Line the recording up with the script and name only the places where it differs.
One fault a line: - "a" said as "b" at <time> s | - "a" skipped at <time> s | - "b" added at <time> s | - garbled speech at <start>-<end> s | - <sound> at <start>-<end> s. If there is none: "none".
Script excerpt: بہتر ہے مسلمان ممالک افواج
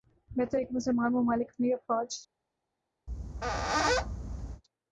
- "کہ" added at 0.6 s
- "اپنی" added at 1.5 s
- squeak at 3.1-4.6 s